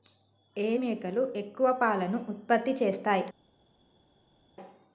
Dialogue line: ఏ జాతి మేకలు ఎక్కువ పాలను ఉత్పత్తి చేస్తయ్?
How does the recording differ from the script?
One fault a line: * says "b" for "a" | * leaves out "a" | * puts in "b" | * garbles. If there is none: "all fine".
* leaves out "జాతి"